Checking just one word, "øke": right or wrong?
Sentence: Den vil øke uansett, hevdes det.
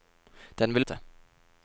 wrong